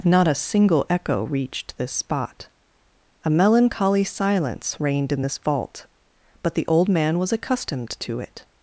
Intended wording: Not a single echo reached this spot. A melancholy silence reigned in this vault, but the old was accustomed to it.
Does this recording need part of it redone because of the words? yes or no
yes